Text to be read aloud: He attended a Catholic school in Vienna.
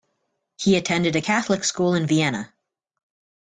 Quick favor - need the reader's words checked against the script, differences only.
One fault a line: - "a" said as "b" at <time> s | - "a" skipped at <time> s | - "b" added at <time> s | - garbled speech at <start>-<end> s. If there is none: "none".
none